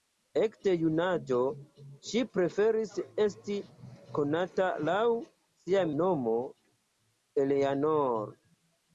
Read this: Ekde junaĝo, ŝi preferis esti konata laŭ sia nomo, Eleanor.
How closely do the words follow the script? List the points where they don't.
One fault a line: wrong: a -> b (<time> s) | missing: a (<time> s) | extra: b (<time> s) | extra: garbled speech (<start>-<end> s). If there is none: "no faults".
no faults